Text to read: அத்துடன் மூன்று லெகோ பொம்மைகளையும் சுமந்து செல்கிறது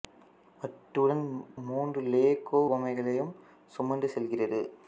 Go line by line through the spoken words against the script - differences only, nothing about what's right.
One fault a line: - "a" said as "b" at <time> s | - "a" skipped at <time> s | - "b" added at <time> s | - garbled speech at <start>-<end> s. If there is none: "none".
none